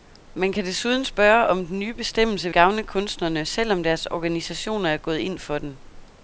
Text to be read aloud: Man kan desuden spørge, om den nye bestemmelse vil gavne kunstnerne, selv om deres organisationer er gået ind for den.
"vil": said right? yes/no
no